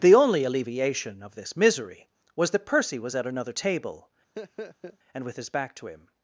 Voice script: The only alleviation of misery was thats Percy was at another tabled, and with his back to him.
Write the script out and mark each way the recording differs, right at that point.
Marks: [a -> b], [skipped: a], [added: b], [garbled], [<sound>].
The only alleviation of [added: this] misery was [thats -> that] Percy was at another [tabled, -> table] [laugh] and with his back to him.